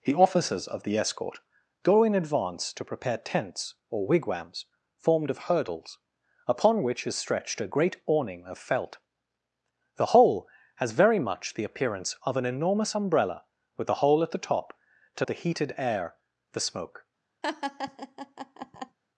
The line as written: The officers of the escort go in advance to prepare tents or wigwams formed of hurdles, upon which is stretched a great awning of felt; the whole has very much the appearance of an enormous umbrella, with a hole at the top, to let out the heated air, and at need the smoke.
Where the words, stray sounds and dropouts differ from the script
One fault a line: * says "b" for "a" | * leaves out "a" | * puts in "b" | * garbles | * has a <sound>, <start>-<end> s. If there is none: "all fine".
* leaves out "let out"
* leaves out "and at need"
* has a laugh, 17.4-19.0 s